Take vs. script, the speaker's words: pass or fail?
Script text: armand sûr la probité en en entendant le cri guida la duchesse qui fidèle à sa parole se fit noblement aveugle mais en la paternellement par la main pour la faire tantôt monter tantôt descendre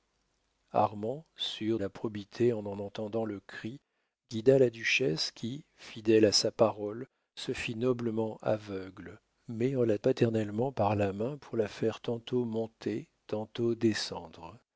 pass